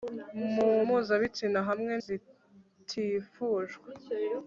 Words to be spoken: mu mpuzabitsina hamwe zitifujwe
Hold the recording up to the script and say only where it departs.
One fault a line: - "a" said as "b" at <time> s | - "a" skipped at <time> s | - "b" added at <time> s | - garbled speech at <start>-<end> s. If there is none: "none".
none